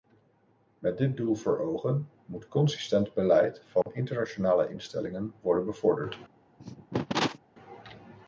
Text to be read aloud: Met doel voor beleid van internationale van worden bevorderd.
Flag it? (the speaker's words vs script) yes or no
yes